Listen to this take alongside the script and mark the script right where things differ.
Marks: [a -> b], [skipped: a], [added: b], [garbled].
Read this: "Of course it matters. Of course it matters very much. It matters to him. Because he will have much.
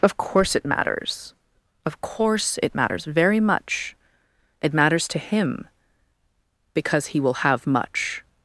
"Of course it matters. Of course it matters very much. It matters to him. Because he will have much.